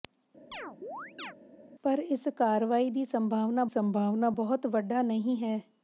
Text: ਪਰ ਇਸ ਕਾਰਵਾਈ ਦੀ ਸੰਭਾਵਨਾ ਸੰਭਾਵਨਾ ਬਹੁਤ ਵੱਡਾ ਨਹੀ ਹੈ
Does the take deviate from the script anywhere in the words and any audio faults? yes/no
yes